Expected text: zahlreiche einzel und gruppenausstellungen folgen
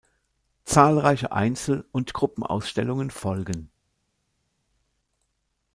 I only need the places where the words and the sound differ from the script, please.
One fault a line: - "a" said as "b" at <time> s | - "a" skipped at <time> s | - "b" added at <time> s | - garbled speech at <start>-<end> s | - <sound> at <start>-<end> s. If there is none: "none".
none